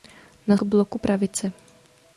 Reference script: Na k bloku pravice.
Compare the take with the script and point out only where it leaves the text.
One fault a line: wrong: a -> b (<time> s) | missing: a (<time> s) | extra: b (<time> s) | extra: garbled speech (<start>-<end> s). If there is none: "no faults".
no faults